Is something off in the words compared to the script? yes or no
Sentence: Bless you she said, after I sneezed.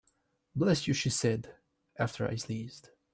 no